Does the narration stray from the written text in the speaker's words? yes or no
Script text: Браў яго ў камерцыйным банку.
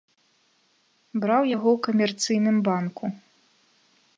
no